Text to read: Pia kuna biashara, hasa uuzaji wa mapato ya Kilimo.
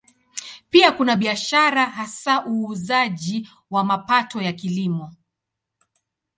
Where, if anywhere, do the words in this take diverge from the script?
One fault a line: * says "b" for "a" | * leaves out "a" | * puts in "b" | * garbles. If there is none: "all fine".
all fine